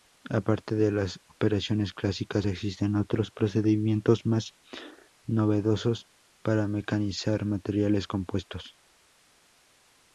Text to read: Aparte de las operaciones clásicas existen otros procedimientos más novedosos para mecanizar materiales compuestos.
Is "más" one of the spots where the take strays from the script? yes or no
no